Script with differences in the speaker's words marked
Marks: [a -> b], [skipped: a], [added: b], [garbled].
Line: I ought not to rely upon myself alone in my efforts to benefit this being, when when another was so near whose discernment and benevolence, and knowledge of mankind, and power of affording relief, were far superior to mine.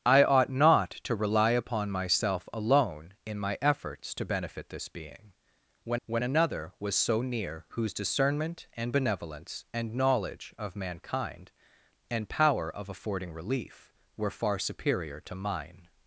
I ought not to rely upon myself alone in my efforts to benefit this being, when when another was so near whose discernment and benevolence, and knowledge of mankind, and power of affording relief, were far superior to mine.